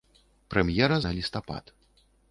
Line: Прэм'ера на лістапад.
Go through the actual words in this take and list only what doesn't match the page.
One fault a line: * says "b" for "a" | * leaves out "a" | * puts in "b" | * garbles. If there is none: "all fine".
all fine